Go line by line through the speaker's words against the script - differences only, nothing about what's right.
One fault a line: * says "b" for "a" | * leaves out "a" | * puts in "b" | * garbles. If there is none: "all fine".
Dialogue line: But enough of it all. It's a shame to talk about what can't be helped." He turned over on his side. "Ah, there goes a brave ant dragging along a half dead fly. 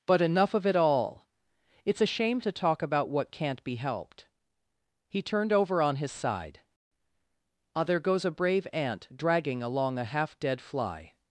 all fine